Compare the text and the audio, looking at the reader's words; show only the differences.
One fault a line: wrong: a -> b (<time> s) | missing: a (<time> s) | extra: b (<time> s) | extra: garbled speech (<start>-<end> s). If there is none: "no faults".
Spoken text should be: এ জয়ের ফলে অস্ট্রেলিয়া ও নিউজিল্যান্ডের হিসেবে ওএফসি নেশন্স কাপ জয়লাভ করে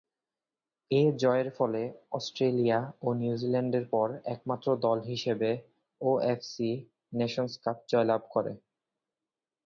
extra: পর একমাত্র দল (3.9 s)